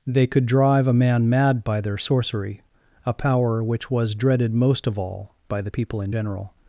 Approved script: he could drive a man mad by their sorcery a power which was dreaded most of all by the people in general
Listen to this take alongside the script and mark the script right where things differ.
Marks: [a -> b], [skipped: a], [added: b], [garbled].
[he -> they] could drive a man mad by their sorcery a power which was dreaded most of all by the people in general